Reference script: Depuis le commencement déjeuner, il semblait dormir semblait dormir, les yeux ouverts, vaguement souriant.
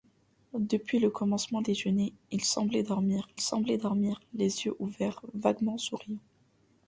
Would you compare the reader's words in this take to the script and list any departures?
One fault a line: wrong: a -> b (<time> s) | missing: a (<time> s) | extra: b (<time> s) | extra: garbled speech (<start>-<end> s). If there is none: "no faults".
no faults